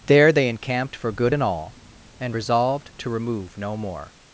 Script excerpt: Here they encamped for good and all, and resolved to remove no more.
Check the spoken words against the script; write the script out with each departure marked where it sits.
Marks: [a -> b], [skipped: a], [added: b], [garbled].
[Here -> There] they encamped for good and all, and resolved to remove no more.